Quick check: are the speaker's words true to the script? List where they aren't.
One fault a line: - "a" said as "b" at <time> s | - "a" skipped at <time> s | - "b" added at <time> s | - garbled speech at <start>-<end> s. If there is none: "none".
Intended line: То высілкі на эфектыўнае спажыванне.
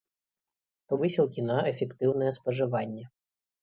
none